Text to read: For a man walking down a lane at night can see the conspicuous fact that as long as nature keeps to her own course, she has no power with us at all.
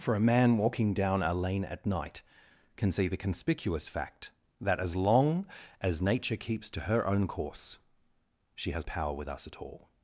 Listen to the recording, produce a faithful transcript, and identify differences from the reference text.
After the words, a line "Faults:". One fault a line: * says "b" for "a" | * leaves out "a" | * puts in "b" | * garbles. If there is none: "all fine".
For a man walking down a lane at night can see the conspicuous fact that as long as nature keeps to her own course, she has power with us at all.
Faults:
* leaves out "no"